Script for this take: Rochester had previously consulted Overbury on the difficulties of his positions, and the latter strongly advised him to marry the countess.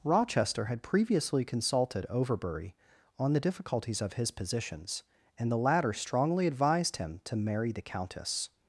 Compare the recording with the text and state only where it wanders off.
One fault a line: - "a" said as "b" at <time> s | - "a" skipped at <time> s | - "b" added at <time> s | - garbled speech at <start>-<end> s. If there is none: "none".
none